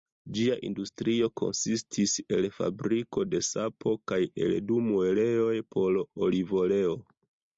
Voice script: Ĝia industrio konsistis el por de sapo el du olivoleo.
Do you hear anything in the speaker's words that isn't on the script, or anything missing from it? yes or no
yes